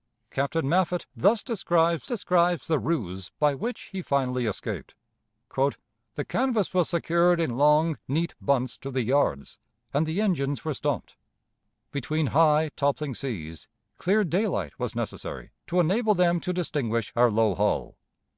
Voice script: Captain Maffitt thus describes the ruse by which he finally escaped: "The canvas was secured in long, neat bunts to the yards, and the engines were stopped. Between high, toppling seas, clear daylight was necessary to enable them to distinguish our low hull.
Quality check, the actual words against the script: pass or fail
fail